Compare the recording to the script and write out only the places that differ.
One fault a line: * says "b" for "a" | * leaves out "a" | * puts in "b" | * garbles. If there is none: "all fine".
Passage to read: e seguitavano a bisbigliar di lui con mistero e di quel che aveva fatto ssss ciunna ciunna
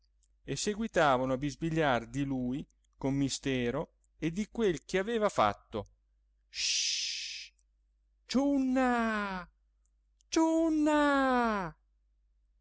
all fine